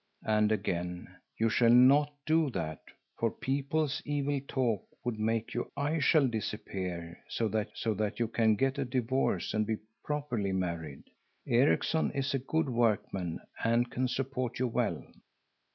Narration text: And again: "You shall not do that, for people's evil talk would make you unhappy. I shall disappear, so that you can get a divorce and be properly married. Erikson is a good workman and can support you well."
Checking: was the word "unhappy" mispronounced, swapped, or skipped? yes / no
yes